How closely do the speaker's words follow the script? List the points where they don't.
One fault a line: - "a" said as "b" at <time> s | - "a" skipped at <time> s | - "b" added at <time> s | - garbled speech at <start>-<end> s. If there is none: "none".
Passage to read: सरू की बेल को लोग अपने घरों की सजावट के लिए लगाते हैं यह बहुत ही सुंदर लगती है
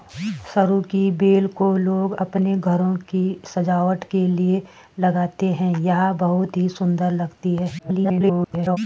- garbled speech at 7.8-8.8 s